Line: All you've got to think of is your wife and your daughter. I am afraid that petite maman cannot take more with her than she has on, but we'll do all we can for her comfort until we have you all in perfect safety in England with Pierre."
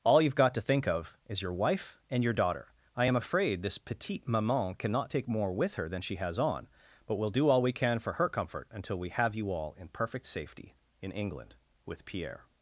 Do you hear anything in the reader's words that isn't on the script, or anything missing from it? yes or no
yes